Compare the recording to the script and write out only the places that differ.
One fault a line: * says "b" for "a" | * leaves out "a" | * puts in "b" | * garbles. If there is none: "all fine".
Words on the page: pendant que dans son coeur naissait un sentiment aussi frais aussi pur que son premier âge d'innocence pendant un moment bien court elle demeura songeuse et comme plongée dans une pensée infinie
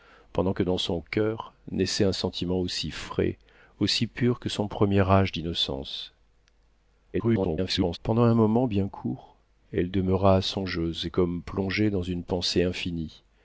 * garbles